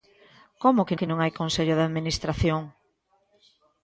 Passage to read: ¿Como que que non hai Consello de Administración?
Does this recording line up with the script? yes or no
yes